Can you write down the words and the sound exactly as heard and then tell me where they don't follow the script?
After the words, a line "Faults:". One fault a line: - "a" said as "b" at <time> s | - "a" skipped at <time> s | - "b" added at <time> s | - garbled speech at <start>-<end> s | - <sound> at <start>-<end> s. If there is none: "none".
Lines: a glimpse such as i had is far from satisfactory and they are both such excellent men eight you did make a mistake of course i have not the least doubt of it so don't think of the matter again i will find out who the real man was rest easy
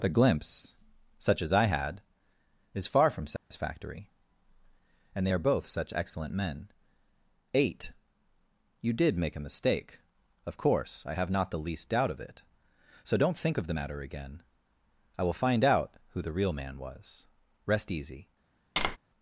the glimpse such as i had is far from satisfactory and they are both such excellent men eight you did make a mistake of course i have not the least doubt of it so don't think of the matter again i will find out who the real man was rest easy
Faults:
- "a" said as "the" at 0.0 s
- dropout at 3.4-3.5 s
- tap at 18.8-19.0 s